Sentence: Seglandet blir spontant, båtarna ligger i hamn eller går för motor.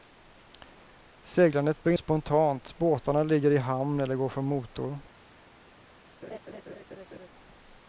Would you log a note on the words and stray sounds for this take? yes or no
yes